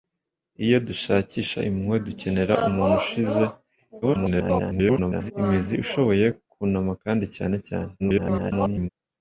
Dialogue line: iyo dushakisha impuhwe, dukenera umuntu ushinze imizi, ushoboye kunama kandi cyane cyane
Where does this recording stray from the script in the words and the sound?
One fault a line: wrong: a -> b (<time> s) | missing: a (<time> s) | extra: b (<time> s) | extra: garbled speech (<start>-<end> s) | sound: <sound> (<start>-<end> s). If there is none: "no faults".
extra: garbled speech (4.0-5.3 s)
extra: garbled speech (8.0-8.9 s)